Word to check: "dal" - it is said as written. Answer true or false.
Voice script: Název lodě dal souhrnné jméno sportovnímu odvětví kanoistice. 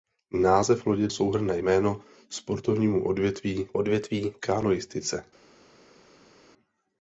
false